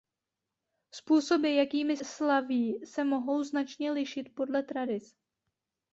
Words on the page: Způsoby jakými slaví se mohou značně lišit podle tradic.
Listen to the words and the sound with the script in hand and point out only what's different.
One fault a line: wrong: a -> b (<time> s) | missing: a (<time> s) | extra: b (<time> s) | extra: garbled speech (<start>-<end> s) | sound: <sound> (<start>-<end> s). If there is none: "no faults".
no faults